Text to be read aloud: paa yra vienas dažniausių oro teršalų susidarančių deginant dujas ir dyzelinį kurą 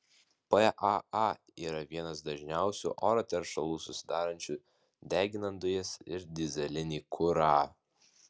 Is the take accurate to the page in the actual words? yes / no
yes